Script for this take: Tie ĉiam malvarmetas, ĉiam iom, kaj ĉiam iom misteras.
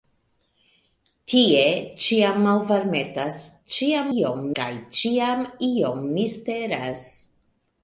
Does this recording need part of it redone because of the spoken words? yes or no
no